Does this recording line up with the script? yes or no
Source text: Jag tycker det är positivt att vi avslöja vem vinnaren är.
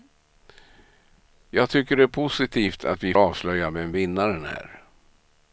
yes